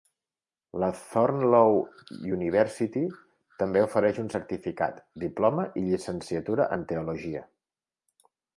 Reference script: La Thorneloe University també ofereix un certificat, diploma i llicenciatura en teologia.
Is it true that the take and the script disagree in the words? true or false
false